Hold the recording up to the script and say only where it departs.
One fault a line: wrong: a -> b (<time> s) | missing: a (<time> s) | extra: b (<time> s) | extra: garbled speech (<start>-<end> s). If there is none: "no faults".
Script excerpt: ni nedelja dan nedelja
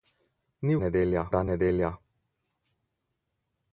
no faults